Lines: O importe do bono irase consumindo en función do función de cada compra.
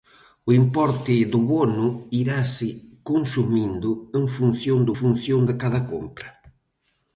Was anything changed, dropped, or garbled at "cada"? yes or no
no